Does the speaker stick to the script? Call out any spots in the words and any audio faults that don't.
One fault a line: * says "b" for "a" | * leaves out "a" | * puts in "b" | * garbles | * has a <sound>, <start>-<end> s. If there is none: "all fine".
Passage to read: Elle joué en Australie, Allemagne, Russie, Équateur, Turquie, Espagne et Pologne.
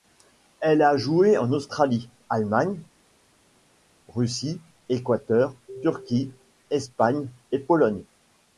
* puts in "a"